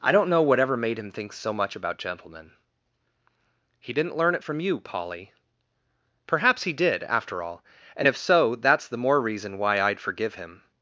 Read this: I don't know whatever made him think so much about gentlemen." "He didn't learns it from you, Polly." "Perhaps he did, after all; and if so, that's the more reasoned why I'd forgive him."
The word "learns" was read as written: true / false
false